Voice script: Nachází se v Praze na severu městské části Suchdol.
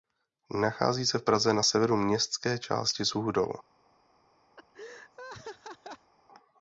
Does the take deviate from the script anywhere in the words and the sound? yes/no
yes